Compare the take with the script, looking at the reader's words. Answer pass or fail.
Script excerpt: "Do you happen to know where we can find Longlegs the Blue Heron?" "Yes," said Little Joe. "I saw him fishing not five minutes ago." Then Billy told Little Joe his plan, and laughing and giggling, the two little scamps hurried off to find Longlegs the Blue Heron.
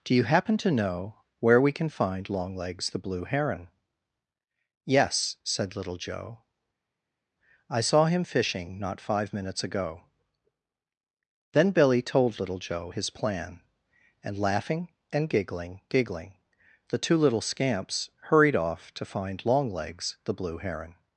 fail